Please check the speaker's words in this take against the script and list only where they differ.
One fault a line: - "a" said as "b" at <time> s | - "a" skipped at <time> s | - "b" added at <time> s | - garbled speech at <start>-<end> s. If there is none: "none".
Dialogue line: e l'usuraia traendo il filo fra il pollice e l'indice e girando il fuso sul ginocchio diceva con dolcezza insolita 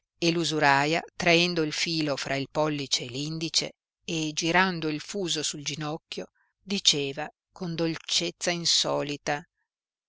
none